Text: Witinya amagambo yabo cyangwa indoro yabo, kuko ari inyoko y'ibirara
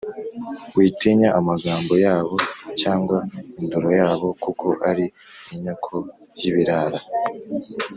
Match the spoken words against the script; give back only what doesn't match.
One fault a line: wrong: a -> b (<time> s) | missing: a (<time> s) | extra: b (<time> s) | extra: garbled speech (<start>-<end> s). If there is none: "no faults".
no faults